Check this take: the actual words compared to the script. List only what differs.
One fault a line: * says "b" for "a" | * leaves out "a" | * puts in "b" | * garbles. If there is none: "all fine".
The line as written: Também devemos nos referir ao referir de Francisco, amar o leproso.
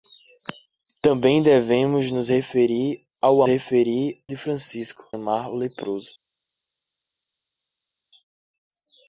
all fine